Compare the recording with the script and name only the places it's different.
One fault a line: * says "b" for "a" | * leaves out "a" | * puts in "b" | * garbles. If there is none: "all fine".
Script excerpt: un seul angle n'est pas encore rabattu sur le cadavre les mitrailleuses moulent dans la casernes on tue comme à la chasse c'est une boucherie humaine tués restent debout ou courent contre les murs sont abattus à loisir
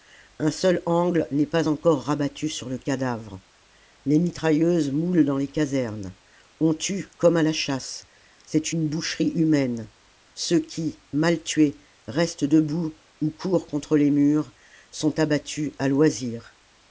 * says "les" for "la"
* puts in "ceux qui mal"